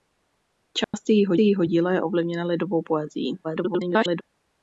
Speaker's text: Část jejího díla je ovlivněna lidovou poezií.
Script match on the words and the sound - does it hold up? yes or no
no